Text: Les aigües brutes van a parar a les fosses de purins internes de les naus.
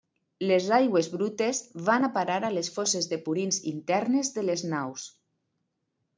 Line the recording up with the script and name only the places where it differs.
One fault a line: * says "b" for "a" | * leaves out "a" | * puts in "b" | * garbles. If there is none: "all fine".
all fine